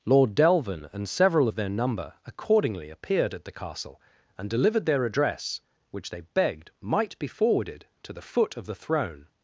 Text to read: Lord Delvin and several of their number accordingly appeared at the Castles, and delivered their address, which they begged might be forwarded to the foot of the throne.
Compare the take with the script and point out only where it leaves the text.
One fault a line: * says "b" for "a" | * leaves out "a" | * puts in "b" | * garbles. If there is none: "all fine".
* says "Castle" for "Castles"